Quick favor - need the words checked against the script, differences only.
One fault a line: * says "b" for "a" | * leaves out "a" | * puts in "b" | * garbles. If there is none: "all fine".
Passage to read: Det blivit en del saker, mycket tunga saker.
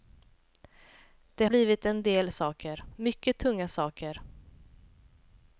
all fine